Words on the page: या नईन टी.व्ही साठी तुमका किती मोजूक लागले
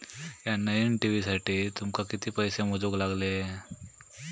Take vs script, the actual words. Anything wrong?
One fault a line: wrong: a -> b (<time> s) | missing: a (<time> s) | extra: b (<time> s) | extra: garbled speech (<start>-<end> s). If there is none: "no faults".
extra: पैसे (2.3 s)